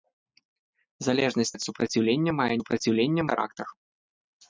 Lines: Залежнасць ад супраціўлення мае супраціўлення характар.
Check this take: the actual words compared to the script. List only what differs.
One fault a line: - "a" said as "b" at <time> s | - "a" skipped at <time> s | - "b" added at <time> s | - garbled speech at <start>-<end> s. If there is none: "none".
none